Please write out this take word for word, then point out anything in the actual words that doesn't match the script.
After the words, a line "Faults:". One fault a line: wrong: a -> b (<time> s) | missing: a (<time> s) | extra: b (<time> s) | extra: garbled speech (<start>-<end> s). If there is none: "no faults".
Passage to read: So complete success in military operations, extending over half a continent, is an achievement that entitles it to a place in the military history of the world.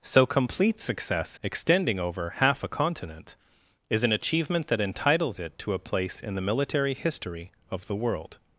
So complete success extending over half a continent, is an achievement that entitles it to a place in the military history of the world.
Faults:
missing: in military operations (1.4 s)